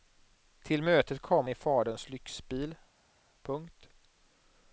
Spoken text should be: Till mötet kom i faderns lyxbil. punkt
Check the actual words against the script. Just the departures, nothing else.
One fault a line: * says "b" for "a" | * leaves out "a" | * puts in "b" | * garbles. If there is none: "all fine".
all fine